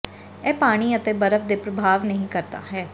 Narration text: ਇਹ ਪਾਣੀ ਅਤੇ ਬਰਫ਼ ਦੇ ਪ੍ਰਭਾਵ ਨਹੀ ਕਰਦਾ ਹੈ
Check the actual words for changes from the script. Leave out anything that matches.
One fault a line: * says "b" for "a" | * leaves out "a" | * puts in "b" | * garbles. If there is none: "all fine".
all fine